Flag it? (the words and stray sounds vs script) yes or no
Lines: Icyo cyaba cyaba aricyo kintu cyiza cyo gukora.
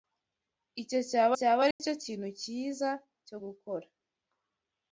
yes